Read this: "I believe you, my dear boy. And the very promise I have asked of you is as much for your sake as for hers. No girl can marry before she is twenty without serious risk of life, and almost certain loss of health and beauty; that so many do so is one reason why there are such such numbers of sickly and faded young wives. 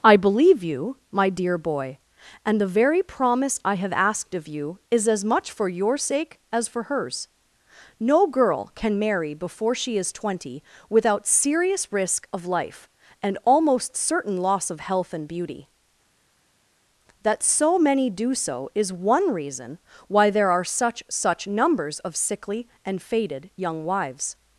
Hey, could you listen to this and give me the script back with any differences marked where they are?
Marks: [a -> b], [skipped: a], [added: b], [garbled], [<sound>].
"I believe you, my dear boy. And the very promise I have asked of you is as much for your sake as for hers. No girl can marry before she is twenty without serious risk of life, and almost certain loss of health and beauty; that so many do so is one reason why there are such such numbers of sickly and faded young wives.